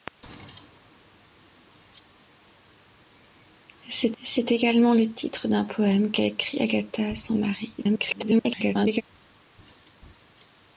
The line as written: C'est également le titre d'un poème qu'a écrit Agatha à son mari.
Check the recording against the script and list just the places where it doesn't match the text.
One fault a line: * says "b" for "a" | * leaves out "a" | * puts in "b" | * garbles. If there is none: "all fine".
* puts in "c'est"
* garbles